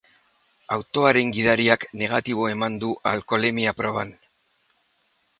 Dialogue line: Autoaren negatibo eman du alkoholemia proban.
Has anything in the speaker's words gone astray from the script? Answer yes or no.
yes